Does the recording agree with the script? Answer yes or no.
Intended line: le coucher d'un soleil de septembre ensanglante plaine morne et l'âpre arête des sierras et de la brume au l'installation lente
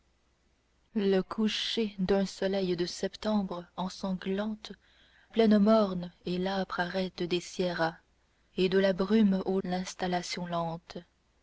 yes